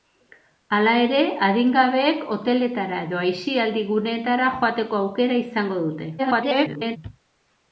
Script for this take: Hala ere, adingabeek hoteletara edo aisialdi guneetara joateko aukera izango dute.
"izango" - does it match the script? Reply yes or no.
yes